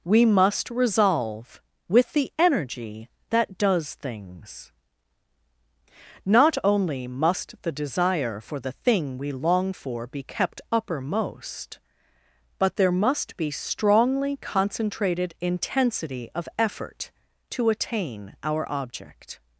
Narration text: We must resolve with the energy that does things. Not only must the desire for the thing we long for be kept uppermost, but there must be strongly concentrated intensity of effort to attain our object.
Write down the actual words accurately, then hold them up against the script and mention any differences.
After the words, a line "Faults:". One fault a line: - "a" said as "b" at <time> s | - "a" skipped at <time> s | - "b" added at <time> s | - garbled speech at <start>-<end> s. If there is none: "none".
We must resolve with the energy that does things. Not only must the desire for the thing we long for be kept uppermost, but there must be strongly concentrated intensity of effort to attain our object.
Faults:
none